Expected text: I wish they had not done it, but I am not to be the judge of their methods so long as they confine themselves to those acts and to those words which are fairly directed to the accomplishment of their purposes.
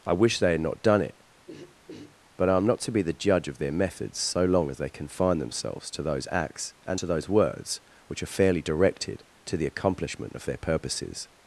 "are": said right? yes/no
yes